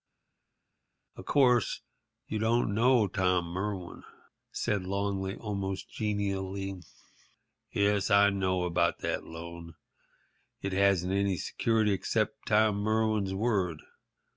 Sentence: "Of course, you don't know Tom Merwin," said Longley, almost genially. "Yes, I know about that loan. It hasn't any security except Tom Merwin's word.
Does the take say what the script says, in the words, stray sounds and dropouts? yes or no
yes